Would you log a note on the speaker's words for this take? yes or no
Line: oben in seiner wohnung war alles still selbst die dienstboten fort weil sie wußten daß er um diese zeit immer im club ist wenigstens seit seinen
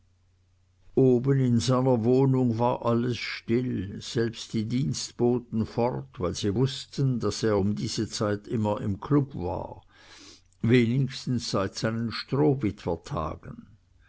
yes